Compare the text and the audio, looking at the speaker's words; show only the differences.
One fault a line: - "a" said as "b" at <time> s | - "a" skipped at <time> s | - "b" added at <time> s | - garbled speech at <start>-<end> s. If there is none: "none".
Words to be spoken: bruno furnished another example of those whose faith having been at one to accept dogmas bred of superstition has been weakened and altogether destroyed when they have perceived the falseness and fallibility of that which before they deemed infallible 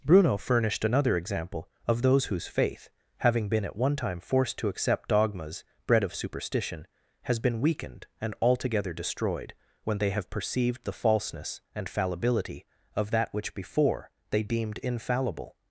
- "time forced" added at 4.0 s